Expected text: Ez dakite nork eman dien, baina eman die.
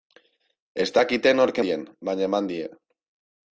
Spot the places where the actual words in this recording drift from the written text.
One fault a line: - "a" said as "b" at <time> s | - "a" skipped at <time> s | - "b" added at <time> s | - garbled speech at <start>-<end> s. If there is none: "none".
- "eman" skipped at 1.6 s